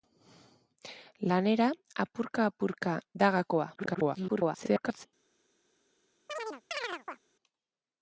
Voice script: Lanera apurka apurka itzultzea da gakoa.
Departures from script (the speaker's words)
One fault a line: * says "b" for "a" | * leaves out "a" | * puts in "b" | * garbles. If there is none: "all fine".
* leaves out "itzultzea"
* garbles